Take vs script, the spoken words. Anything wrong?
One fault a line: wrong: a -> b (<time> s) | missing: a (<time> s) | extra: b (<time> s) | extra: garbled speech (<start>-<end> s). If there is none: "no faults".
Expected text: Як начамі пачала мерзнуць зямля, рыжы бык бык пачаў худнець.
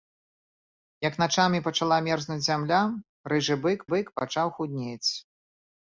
no faults